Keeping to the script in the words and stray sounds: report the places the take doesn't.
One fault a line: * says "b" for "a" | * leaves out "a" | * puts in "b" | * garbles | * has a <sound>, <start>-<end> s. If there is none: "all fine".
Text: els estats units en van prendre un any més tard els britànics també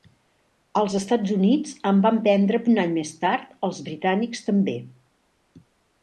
all fine